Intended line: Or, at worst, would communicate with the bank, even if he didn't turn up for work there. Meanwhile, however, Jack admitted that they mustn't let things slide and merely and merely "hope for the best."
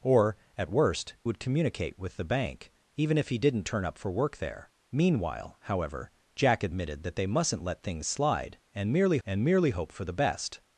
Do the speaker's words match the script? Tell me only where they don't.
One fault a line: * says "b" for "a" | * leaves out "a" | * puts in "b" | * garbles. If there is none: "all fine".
all fine